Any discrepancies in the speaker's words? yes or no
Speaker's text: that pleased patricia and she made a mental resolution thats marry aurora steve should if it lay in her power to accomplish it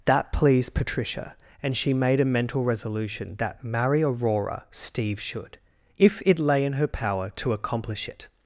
yes